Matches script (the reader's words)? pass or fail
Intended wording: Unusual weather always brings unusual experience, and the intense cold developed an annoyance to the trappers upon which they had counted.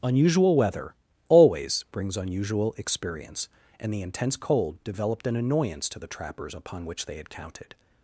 pass